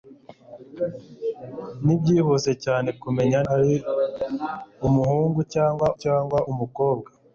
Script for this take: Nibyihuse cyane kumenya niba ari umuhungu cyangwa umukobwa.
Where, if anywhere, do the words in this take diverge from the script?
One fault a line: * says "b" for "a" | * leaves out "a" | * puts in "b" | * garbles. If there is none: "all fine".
* leaves out "niba"
* puts in "cyangwa"